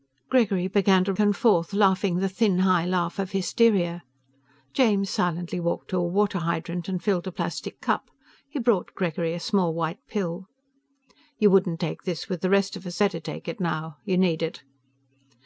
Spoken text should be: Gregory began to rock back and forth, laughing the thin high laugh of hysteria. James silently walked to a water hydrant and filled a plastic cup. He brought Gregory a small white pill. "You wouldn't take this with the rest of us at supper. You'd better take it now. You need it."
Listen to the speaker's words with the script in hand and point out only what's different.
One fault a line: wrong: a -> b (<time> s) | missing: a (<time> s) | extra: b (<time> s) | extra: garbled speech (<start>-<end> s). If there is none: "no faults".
missing: rock back (1.1 s)
missing: at supper You'd (13.0 s)